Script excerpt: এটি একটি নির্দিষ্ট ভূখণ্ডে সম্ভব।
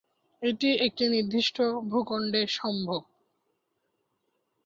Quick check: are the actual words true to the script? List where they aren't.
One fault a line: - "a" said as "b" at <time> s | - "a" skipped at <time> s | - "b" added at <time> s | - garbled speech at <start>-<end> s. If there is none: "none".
none